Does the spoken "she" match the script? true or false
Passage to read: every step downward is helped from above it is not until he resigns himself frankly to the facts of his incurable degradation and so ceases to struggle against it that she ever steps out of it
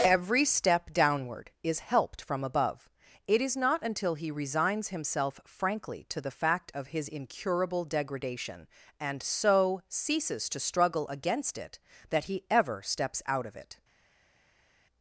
false